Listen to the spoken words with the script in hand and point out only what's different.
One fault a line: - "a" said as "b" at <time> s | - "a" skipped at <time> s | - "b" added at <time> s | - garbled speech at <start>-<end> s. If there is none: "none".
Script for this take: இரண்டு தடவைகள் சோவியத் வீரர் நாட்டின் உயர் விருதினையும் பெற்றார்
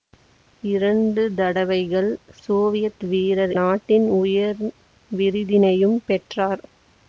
none